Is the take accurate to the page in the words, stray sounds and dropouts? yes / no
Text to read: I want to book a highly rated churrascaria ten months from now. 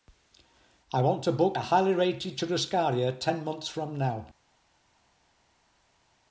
yes